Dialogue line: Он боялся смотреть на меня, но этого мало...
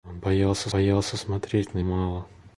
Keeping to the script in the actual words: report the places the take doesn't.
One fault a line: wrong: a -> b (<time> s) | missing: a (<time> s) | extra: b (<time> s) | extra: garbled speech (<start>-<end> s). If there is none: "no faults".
extra: боялся (0.7 s)
missing: меня но этого (1.8 s)